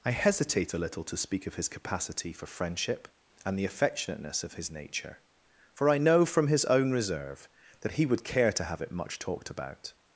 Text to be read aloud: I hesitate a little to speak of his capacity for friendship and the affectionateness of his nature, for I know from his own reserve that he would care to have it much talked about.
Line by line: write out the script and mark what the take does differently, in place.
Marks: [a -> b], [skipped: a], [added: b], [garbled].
I hesitate a little to speak of his capacity for friendship and the affectionateness of his nature, for I know from his own reserve that he would care to have it much talked about.